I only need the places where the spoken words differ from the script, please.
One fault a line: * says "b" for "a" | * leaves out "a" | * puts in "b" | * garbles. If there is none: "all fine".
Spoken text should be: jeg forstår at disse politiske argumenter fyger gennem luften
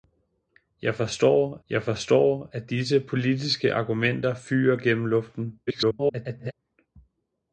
* puts in "jeg forstår"
* garbles